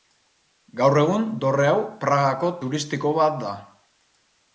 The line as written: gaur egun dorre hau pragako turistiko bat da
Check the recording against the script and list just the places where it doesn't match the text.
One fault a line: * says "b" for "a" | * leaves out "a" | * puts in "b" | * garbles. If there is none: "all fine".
all fine